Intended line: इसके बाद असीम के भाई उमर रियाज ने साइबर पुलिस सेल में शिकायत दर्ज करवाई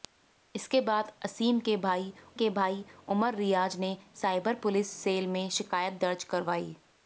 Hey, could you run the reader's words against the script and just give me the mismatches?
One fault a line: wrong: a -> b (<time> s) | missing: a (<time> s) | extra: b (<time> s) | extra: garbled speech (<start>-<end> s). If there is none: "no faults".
extra: के भाई (2.3 s)